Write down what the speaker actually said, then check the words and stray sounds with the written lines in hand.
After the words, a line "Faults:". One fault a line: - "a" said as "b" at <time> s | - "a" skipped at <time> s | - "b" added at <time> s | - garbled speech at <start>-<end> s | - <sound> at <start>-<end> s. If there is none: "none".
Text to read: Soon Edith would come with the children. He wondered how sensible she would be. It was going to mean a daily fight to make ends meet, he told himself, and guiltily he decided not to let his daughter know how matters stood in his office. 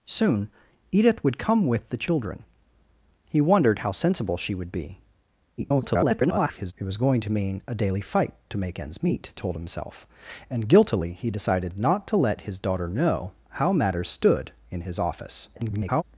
Soon Edith would come with the children. He wondered how sensible she would be. [garbled] It was going to mean a daily fight to make ends meet, told himself, and guiltily he decided not to let his daughter know how matters stood in his office. [garbled]
Faults:
- garbled speech at 5.6-6.7 s
- "he" skipped at 9.3 s
- garbled speech at 15.6-16.0 s